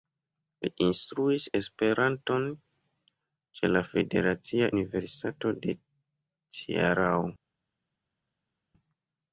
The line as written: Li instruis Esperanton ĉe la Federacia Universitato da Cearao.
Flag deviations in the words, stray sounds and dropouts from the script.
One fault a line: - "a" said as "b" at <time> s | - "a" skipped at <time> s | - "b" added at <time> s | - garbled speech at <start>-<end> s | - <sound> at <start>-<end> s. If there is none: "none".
- "da" said as "de" at 5.6 s